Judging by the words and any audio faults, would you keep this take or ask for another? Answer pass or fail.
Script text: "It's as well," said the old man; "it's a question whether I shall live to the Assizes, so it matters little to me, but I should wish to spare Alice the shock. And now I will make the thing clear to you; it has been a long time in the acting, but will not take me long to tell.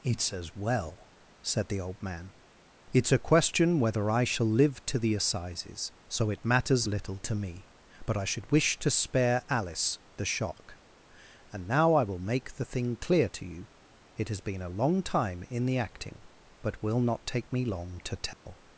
fail